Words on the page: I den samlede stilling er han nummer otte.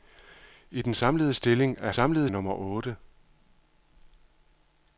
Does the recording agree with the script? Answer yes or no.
no